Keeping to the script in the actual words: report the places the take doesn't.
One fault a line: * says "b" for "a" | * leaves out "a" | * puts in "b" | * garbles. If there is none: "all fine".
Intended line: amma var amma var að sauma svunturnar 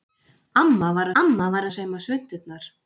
all fine